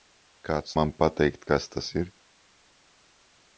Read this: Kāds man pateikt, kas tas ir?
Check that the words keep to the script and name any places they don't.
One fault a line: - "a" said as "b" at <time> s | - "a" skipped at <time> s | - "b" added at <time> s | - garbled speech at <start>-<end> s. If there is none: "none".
none